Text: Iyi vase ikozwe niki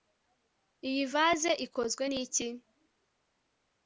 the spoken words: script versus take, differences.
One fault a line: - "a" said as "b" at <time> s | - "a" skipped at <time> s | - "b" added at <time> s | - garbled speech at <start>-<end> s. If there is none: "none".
none